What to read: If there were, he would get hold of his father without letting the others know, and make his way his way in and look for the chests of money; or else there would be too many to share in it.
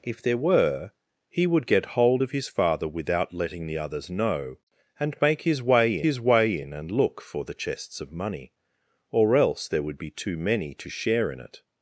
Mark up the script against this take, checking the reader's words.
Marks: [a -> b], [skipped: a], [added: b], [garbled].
If there were, he would get hold of his father without letting the others know, and make his way his way in and look for the chests of money; or else there would be too many to share in it.